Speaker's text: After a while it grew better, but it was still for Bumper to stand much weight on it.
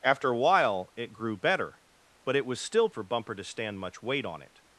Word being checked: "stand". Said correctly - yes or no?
yes